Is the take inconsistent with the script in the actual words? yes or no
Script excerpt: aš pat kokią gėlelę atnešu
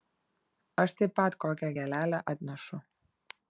yes